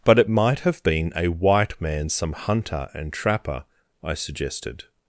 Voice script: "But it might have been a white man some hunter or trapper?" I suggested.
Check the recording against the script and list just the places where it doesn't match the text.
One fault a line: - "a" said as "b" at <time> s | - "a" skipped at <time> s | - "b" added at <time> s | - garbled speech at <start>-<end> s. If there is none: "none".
- "or" said as "and" at 2.9 s